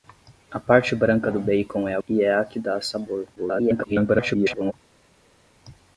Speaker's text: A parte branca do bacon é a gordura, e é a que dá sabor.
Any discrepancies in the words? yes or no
yes